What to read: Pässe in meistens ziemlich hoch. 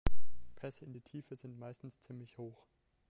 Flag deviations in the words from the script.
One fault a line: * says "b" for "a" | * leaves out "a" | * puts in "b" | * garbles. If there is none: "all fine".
* puts in "die Tiefe sind"